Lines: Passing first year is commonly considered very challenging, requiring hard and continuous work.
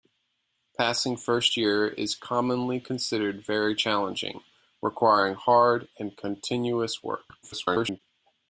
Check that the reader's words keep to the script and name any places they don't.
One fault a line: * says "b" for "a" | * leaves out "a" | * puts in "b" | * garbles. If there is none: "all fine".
* garbles